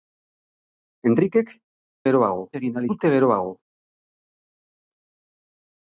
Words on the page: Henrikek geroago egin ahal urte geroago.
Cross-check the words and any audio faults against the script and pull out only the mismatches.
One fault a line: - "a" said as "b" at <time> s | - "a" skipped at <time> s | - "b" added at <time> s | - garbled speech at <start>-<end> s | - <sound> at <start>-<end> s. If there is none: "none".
none